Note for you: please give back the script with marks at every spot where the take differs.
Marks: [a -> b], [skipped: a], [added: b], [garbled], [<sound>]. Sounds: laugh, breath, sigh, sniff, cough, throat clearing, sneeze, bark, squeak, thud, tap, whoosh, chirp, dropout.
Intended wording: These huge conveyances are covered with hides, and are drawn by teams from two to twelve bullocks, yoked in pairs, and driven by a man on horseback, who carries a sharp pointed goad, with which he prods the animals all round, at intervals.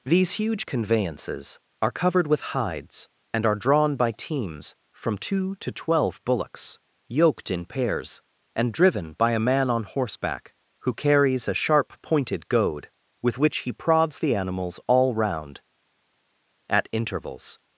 These huge conveyances are covered with hides, and are drawn by teams from two to twelve bullocks, yoked in pairs, and driven by a man on horseback, who carries a sharp pointed goad, with which he prods the animals all round, at intervals.